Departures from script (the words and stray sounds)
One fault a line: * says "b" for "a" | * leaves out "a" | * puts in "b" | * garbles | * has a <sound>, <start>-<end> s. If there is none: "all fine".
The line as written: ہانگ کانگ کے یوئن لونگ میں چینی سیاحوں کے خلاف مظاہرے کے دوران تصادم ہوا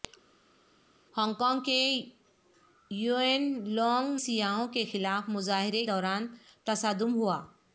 * leaves out "میں چینی"
* leaves out "کے"